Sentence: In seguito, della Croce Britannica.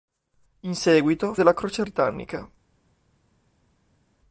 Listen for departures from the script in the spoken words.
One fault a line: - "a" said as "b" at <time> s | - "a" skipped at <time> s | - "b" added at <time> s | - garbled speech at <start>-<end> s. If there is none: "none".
none